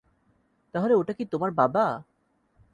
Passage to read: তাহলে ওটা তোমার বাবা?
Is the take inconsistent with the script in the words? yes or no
yes